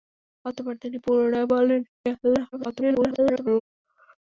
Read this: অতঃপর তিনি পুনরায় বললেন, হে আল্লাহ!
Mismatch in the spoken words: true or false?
true